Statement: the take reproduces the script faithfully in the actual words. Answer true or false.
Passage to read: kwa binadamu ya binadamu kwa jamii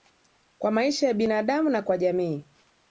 false